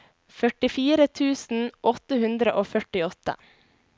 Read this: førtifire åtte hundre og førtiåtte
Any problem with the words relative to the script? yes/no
yes